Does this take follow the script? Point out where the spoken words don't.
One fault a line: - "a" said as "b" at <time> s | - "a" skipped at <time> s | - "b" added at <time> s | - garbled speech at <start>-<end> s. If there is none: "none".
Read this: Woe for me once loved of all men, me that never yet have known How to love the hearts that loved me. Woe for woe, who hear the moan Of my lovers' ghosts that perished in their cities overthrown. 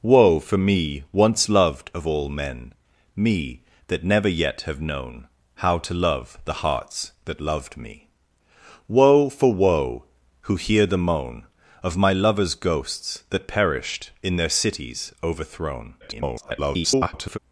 - garbled speech at 16.0-17.4 s